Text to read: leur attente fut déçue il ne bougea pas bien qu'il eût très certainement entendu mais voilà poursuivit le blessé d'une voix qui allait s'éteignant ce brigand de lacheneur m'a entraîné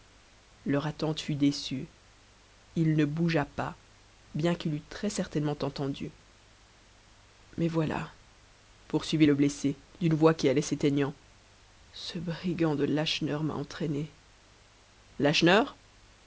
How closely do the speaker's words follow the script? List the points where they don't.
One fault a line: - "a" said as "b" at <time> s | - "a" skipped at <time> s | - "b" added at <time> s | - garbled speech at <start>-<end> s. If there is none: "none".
none